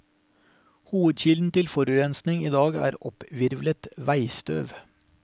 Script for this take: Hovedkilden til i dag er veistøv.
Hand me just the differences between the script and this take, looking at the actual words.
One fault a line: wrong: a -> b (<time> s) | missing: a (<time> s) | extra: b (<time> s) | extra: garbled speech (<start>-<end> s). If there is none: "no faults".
extra: forurensning (1.7 s)
extra: opphvirvlet (3.0 s)